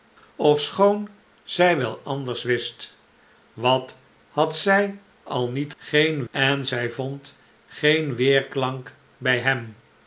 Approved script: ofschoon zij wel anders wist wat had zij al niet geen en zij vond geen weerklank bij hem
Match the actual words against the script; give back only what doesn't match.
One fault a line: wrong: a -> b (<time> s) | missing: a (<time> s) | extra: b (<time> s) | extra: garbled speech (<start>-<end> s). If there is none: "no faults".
no faults